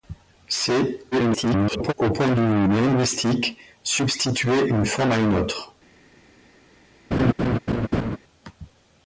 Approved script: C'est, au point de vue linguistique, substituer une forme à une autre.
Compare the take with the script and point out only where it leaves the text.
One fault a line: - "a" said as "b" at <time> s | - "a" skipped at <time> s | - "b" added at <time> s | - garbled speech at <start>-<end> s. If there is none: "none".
- garbled speech at 1.1-1.9 s